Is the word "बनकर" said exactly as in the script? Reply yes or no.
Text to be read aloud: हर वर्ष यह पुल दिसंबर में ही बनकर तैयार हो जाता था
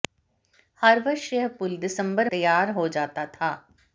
no